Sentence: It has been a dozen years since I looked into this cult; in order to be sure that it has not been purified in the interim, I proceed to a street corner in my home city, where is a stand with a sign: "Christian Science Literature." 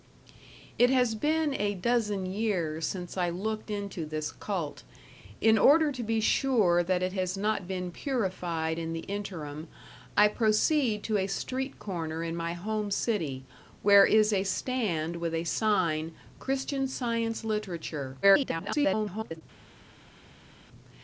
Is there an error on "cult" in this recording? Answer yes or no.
no